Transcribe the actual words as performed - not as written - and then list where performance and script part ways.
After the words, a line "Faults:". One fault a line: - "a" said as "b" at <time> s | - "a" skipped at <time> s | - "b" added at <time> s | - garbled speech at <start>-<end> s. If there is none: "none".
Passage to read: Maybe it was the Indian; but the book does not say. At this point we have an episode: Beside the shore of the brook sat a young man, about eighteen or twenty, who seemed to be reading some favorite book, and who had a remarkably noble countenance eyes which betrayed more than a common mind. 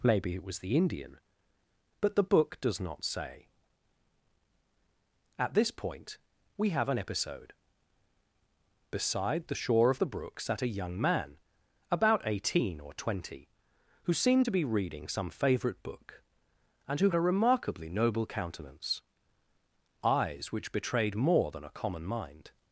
Maybe it was the Indian; but the book does not say. At this point we have an episode: Beside the shore of the brook sat a young man, about eighteen or twenty, who seemed to be reading some favorite book, and who a remarkably noble countenance eyes which betrayed more than a common mind.
Faults:
- "had" skipped at 17.1 s